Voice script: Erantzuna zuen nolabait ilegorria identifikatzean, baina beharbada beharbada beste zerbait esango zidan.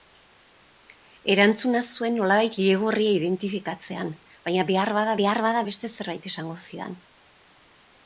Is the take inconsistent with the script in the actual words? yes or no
no